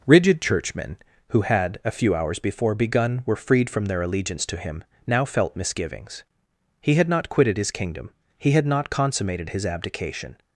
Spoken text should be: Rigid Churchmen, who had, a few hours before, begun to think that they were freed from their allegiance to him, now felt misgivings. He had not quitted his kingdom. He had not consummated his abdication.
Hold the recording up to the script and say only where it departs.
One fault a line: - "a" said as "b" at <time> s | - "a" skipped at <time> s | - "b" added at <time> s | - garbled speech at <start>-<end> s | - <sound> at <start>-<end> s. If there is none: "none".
- "to think that they" skipped at 3.2 s